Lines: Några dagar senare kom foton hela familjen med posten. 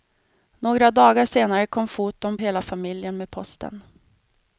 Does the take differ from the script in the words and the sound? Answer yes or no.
no